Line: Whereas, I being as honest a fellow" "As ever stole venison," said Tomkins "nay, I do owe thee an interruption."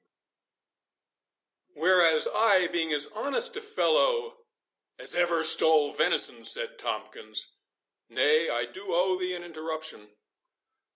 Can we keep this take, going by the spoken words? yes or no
yes